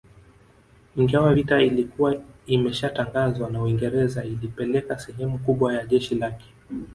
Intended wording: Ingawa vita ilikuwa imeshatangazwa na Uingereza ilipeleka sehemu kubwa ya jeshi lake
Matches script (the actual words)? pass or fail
pass